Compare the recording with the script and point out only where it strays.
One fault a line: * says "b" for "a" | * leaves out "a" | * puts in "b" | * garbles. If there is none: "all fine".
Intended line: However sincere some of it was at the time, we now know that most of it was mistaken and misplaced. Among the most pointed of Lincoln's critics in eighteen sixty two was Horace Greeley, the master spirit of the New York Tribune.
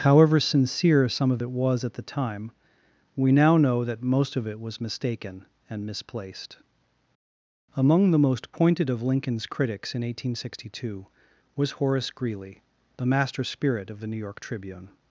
all fine